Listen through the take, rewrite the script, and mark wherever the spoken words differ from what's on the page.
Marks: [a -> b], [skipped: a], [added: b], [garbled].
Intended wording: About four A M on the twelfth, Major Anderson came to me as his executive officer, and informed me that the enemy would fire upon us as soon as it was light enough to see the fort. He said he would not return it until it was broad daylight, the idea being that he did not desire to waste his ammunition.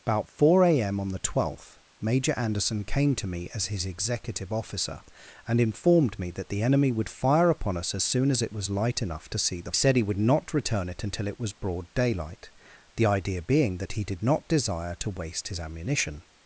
About four A M on the twelfth, Major Anderson came to me as his executive officer, and informed me that the enemy would fire upon us as soon as it was light enough to see the [skipped: fort. He] said he would not return it until it was broad daylight, the idea being that he did not desire to waste his ammunition.